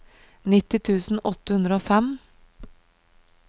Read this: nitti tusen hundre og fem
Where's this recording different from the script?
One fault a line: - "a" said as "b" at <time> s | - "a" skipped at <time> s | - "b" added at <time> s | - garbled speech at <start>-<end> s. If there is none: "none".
- "åtte" added at 1.3 s